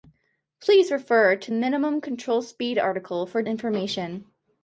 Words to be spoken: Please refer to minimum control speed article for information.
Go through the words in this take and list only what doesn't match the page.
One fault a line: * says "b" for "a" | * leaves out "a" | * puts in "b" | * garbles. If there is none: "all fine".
all fine